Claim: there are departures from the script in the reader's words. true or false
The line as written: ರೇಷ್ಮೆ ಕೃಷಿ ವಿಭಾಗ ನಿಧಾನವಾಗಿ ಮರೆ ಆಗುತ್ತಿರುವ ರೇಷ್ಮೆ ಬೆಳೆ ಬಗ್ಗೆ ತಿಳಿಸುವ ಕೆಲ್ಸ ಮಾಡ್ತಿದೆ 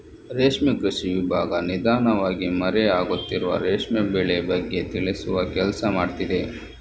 false